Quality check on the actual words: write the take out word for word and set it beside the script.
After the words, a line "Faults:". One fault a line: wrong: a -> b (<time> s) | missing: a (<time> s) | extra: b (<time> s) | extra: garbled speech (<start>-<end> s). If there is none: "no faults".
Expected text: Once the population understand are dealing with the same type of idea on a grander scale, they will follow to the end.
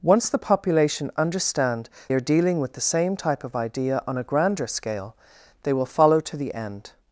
Once the population understand are dealing with the same type of idea on a grander scale, they will follow to the end.
Faults:
no faults